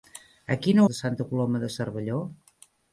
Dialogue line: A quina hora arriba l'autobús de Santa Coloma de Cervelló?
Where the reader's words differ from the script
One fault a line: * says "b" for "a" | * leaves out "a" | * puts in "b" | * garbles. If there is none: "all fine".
* leaves out "hora arriba l'autobús"